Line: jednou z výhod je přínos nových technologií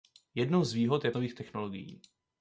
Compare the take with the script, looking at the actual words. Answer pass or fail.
fail